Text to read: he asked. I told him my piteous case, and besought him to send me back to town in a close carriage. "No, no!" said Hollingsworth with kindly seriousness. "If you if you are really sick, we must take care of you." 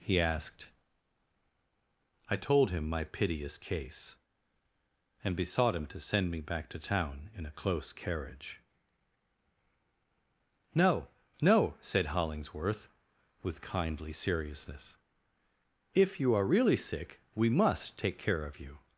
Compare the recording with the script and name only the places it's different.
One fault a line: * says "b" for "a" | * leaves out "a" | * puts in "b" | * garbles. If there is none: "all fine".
* leaves out "if you"